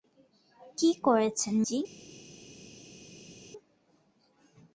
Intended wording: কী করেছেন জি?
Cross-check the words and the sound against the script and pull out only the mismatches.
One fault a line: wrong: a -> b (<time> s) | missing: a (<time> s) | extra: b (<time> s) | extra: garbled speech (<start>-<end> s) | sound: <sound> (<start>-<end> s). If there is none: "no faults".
no faults